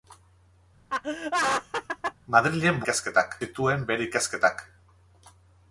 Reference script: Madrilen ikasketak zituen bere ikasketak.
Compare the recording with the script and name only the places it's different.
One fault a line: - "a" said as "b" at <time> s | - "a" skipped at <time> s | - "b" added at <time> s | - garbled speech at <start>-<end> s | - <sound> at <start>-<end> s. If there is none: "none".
- laugh at 0.9-2.1 s